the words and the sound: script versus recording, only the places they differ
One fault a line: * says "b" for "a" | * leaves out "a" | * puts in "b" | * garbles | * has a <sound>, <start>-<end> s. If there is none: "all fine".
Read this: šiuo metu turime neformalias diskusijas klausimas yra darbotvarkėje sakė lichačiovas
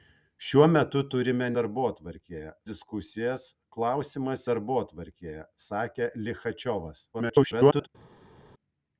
* says "darbotvarkėje" for "neformalias"
* leaves out "yra"
* garbles